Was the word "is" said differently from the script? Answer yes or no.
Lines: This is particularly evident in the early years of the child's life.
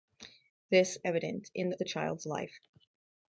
yes